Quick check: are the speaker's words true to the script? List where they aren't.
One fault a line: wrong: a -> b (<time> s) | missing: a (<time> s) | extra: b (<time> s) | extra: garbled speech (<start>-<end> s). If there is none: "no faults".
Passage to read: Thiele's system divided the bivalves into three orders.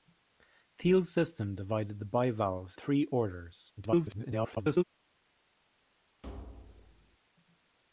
missing: into (2.8 s)
extra: garbled speech (3.8-4.8 s)